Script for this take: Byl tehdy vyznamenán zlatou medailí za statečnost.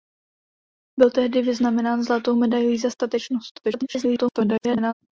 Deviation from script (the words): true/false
true